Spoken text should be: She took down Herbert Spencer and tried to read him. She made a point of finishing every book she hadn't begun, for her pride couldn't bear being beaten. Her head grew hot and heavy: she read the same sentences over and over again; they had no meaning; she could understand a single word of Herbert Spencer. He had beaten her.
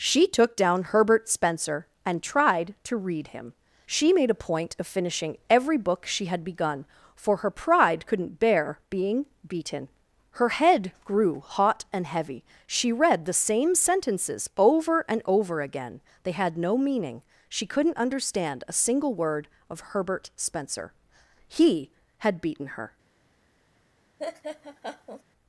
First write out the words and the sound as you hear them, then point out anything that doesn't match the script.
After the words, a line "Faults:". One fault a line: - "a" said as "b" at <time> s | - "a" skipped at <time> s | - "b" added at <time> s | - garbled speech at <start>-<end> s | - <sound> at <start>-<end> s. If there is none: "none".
She took down Herbert Spencer and tried to read him. She made a point of finishing every book she had begun, for her pride couldn't bear being beaten. Her head grew hot and heavy: she read the same sentences over and over again; they had no meaning; she couldn't understand a single word of Herbert Spencer. He had beaten her.
Faults:
- "hadn't" said as "had" at 6.3 s
- "could" said as "couldn't" at 17.6 s
- laugh at 24.2-25.2 s